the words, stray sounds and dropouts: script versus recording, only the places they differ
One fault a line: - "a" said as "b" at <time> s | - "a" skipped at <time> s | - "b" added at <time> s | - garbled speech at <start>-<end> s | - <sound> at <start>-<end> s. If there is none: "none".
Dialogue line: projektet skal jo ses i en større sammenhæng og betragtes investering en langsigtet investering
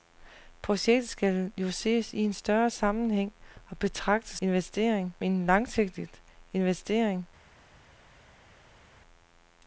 none